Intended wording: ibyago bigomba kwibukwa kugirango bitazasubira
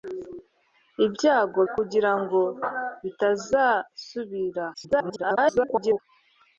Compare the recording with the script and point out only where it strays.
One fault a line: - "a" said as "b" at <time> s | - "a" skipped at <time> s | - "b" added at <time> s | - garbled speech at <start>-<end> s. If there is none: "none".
- "bigomba kwibukwa" skipped at 1.6 s
- garbled speech at 4.7-6.0 s